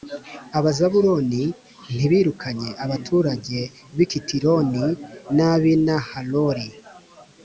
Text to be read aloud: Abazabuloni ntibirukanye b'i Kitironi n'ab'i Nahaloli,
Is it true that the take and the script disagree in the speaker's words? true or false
true